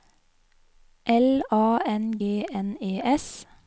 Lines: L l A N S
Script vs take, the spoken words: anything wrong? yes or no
yes